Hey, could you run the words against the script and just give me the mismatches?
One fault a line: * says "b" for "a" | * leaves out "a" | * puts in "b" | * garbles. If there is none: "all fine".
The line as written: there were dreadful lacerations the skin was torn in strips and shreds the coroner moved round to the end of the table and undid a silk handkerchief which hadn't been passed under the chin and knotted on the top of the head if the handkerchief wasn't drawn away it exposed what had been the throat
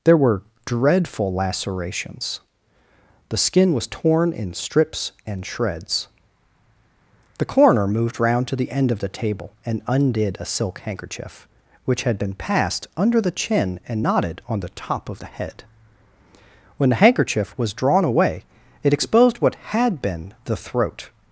* says "had" for "hadn't"
* says "when" for "if"
* says "was" for "wasn't"